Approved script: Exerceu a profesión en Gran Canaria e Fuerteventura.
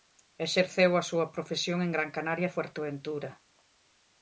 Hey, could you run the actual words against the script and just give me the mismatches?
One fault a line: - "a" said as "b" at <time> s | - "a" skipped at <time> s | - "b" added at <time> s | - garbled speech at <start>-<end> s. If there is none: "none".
- "súa" added at 1.1 s